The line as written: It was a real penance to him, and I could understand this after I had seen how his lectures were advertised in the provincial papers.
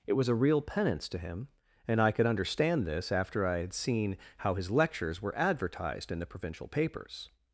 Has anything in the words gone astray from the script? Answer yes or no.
no